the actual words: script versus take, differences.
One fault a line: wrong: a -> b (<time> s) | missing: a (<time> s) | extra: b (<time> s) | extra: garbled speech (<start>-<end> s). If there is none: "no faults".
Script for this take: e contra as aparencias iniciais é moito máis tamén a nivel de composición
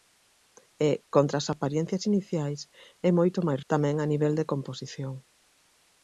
no faults